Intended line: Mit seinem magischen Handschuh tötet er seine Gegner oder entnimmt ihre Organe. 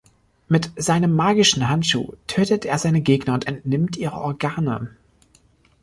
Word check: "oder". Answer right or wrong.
wrong